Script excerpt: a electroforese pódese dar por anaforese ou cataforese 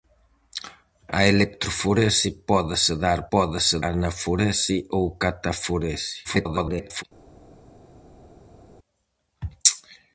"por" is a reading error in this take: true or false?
true